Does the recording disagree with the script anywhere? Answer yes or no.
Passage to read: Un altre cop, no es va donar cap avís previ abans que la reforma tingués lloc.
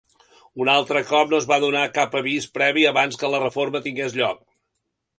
no